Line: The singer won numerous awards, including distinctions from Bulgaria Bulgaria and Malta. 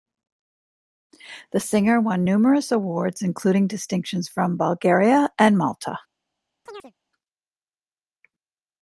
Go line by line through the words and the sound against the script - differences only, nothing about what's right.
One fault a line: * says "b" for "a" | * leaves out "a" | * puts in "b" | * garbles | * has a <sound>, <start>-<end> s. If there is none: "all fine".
* leaves out "Bulgaria"
* has a chirp, 6.7-6.9 s